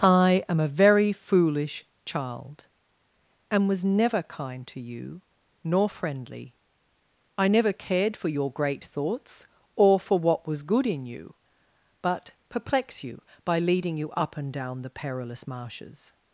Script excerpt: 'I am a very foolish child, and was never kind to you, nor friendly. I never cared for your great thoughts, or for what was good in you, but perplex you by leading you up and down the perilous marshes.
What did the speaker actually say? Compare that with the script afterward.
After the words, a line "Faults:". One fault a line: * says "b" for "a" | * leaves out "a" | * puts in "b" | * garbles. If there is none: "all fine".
'I am a very foolish child, and was never kind to you, nor friendly. I never cared for your great thoughts, or for what was good in you, but perplex you by leading you up and down the perilous marshes.
Faults:
all fine